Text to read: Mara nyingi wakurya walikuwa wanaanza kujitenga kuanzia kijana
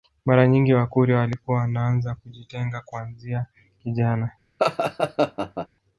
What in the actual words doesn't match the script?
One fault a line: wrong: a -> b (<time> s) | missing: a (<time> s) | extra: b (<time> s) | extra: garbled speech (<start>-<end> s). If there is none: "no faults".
no faults